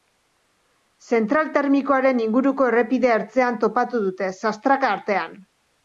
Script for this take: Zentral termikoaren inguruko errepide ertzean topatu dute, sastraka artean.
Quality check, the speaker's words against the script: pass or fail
pass